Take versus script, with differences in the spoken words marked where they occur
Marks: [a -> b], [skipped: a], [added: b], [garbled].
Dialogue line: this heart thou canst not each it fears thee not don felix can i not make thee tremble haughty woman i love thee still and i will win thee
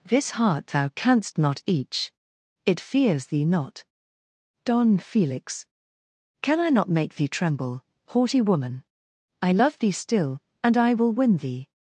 this heart thou canst not each it fears thee not don felix can i not make thee tremble haughty woman i love thee still and i will win thee